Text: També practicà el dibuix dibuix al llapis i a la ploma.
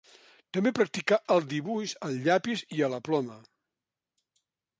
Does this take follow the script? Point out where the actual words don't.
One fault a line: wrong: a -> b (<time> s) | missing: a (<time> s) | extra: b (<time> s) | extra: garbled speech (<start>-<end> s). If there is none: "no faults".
missing: dibuix (2.0 s)